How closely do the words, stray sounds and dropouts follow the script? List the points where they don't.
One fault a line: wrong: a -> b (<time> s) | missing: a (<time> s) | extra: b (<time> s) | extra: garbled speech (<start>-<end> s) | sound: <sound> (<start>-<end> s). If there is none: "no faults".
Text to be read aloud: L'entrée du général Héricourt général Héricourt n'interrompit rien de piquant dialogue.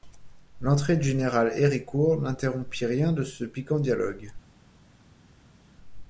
missing: général Héricourt (2.2 s)
extra: ce (3.2 s)